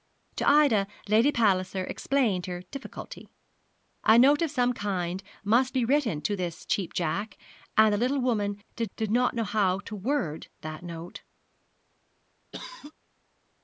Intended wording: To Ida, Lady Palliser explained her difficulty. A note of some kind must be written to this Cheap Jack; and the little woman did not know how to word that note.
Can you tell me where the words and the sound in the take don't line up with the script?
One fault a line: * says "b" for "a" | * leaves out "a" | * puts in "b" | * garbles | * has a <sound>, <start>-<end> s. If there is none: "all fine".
* puts in "did"
* has a cough, 12.5-12.9 s